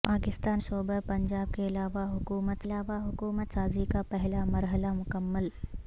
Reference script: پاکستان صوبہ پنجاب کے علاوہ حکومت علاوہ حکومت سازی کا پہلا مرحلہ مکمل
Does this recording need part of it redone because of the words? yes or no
no